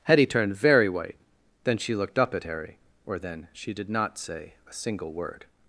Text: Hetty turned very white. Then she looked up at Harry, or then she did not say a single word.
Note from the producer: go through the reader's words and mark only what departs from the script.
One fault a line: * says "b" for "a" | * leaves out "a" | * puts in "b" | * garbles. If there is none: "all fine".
all fine